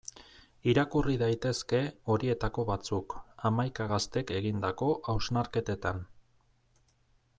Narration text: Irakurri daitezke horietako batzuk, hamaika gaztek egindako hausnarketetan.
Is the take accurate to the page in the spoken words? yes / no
yes